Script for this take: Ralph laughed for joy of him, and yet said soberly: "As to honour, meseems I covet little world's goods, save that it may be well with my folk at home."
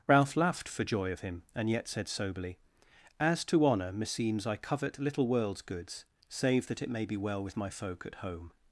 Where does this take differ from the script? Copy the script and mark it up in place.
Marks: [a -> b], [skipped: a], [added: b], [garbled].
Ralph laughed for joy of him, and yet said soberly: "As to honour, meseems I covet little world's goods, save that it may be well with my folk at home."